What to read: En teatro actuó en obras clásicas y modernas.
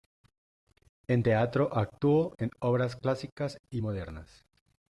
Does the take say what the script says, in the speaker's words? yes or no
yes